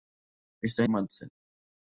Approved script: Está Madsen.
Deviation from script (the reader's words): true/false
false